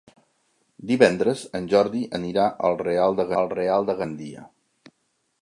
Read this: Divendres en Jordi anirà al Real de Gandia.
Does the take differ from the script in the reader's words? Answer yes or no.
yes